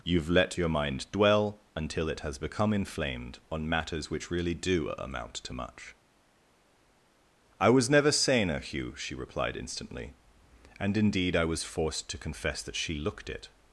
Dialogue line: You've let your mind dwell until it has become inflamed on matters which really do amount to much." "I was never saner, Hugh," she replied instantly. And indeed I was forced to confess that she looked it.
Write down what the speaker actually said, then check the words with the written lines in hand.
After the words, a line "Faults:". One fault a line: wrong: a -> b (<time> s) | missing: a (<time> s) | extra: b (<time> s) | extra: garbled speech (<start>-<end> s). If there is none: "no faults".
You've let your mind dwell until it has become inflamed on matters which really do amount to much." "I was never saner, Hugh," she replied instantly. And indeed I was forced to confess that she looked it.
Faults:
no faults